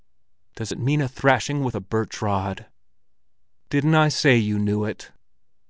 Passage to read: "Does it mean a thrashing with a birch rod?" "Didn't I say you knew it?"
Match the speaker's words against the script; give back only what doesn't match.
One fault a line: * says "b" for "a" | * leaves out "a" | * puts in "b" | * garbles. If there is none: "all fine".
all fine